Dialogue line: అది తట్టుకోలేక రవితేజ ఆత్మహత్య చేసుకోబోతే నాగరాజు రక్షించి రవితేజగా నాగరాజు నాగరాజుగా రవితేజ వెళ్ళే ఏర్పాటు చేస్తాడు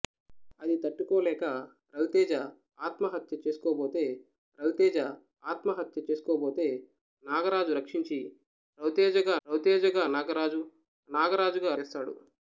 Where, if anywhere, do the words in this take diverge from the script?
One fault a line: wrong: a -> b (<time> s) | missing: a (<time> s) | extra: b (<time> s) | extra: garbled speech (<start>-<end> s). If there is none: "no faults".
extra: రవితేజ ఆత్మహత్య చేసుకోబోతే (4.6 s)
extra: రవితేజగా (9.5 s)
missing: రవితేజ వెళ్ళే ఏర్పాటు (11.7 s)